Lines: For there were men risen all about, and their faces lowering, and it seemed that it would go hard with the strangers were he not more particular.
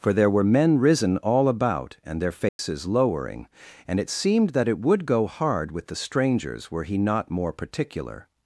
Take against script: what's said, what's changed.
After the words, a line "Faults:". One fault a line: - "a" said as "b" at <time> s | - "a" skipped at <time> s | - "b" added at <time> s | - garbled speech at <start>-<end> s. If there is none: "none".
For there were men risen all about, and their faces lowering, and it seemed that it would go hard with the strangers were he not more particular.
Faults:
none